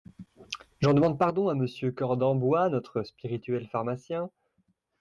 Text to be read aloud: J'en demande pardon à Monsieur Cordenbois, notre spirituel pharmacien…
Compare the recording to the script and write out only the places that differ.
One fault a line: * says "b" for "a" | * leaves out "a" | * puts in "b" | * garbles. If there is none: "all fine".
all fine